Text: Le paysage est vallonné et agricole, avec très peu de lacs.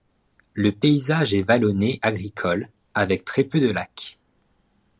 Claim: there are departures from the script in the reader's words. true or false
true